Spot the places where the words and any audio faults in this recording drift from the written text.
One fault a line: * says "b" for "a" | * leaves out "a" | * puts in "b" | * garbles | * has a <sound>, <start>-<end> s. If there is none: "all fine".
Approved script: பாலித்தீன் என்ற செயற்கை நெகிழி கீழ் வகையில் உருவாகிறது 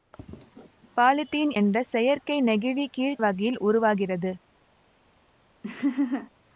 * has a laugh, 5.6-6.3 s